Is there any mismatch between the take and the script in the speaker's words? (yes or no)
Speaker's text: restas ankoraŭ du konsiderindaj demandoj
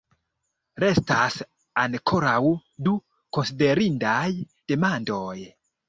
no